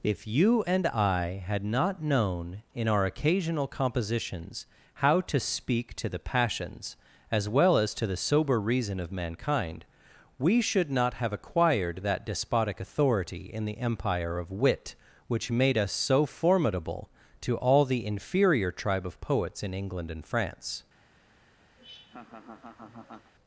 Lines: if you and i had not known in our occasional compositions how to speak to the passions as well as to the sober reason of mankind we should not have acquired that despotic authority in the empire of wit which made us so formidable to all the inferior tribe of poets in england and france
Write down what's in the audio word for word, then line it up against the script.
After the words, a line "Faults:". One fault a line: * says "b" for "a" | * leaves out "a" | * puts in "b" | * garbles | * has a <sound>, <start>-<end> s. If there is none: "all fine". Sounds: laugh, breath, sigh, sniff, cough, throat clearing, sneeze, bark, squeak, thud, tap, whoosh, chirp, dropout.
if you and i had not known in our occasional compositions how to speak to the passions as well as to the sober reason of mankind we should not have acquired that despotic authority in the empire of wit which made us so formidable to all the inferior tribe of poets in england and france
Faults:
* has a laugh, 21.8-23.3 s